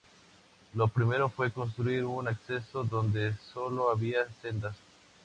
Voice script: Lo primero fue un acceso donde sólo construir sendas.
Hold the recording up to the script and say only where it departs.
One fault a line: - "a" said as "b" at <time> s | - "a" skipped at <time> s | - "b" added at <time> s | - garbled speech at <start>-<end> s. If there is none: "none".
- "construir" added at 1.5 s
- "construir" said as "había" at 3.9 s